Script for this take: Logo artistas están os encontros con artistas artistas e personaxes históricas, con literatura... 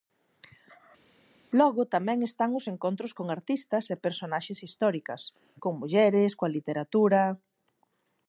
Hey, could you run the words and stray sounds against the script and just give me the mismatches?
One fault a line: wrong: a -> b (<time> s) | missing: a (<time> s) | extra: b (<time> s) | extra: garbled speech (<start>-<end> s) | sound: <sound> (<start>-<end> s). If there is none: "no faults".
wrong: artistas -> tamén (1.9 s)
missing: artistas (3.8 s)
extra: mulleres coa (5.8 s)